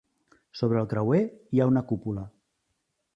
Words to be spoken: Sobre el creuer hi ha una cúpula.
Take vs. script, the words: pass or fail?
pass